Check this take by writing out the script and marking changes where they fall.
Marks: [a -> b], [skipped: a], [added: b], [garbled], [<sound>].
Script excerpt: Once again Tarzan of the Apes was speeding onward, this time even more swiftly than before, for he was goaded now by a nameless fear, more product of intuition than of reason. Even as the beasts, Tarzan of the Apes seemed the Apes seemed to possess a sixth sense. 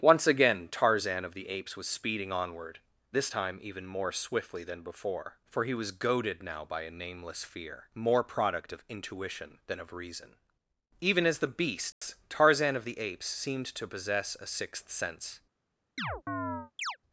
Once again Tarzan of the Apes was speeding onward, this time even more swiftly than before, for he was goaded now by a nameless fear, more product of intuition than of reason. Even as the beasts, [dropout] Tarzan of the Apes seemed [skipped: the Apes seemed] to possess a sixth sense. [chirp]